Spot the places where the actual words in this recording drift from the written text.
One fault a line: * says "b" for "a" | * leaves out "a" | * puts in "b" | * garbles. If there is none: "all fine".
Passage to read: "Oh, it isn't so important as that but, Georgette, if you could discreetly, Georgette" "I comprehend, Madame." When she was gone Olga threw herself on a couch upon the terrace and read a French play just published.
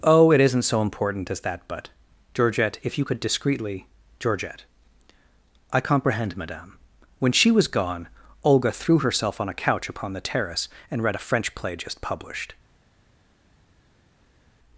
all fine